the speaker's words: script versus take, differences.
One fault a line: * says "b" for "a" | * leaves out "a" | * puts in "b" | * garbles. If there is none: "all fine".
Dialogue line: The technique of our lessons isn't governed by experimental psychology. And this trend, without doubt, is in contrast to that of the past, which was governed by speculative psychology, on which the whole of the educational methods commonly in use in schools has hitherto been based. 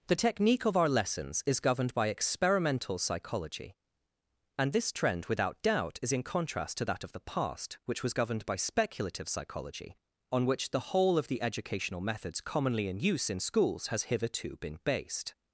* says "is" for "isn't"